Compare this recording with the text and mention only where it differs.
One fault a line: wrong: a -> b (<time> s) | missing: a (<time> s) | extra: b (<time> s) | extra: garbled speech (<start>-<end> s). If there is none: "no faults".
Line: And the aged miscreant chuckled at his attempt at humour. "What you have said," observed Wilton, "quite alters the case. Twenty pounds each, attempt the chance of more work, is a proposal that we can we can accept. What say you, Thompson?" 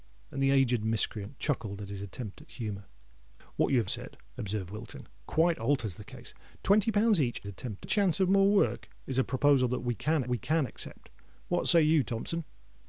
no faults